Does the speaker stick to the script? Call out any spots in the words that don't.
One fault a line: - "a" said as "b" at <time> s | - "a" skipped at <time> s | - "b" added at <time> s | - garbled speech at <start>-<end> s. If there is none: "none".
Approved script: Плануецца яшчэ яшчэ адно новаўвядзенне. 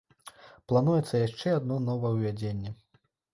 - "яшчэ" skipped at 1.5 s